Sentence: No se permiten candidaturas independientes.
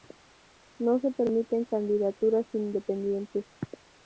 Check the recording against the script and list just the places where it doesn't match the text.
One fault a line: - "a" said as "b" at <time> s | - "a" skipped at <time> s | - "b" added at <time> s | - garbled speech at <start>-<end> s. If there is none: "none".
none